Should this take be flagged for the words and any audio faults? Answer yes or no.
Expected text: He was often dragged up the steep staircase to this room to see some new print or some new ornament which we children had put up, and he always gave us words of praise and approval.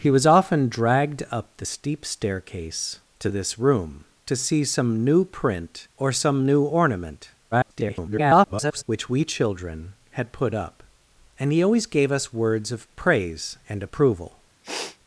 yes